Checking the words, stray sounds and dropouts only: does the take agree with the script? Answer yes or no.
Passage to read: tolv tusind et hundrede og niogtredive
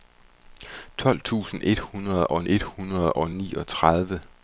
no